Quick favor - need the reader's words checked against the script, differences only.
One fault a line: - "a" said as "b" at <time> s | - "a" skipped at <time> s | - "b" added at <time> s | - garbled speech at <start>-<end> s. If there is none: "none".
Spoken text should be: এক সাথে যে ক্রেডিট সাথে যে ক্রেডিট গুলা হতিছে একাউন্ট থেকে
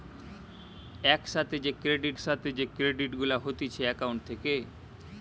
none